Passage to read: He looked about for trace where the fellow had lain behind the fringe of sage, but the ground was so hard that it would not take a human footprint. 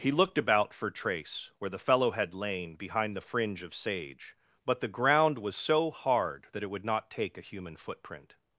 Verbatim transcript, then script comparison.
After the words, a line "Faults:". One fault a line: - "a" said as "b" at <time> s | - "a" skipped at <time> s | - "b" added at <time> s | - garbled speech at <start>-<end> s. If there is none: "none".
He looked about for trace where the fellow had lain behind the fringe of sage, but the ground was so hard that it would not take a human footprint.
Faults:
none